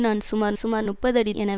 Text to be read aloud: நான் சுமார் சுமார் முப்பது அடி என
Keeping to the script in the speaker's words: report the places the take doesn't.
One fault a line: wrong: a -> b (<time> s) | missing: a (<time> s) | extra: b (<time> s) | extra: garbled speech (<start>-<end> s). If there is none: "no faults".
no faults